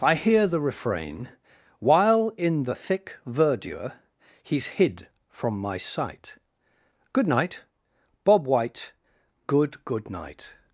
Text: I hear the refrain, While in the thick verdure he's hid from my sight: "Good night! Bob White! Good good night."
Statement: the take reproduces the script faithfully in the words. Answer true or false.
true